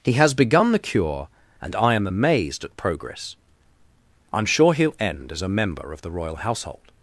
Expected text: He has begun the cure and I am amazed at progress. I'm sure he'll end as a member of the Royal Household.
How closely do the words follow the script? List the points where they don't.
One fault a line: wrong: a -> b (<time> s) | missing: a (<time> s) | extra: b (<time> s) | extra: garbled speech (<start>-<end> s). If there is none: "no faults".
no faults